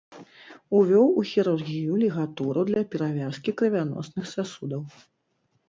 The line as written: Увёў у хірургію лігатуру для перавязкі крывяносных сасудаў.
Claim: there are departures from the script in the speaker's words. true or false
false